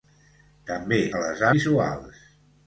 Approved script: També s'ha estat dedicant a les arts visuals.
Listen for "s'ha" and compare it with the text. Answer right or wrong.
wrong